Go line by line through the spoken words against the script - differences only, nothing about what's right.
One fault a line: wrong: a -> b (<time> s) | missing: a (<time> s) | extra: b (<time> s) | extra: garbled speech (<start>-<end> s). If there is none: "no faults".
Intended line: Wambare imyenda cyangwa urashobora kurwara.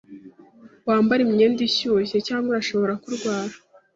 extra: ishyushye (1.7 s)